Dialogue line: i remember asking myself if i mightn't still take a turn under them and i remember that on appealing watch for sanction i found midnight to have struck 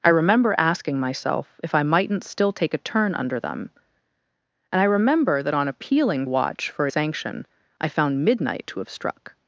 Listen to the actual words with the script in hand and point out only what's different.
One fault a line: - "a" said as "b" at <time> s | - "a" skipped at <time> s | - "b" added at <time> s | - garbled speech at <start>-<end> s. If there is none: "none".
none